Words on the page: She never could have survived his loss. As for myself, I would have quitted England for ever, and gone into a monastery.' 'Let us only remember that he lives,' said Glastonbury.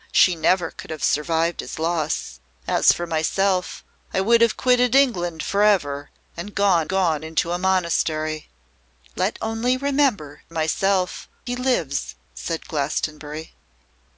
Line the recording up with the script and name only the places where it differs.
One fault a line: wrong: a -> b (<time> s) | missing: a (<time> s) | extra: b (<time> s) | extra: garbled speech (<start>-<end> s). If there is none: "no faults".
extra: gone (6.9 s)
missing: us (9.4 s)
wrong: that -> myself (10.5 s)